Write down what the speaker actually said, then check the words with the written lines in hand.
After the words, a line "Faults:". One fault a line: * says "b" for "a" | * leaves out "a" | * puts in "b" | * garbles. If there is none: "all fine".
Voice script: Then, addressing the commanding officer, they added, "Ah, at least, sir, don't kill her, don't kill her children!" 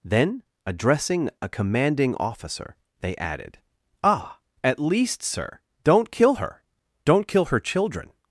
Then, addressing a commanding officer, they added, "Ah, at least, sir, don't kill her, don't kill her children!"
Faults:
* says "a" for "the"